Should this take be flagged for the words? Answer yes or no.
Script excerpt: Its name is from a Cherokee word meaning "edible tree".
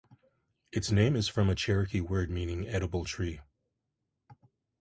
no